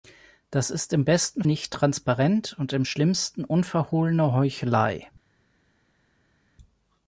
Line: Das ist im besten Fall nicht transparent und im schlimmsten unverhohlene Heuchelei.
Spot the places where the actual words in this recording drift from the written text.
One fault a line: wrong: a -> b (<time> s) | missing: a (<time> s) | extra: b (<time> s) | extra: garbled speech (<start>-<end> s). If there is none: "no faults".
missing: Fall (1.4 s)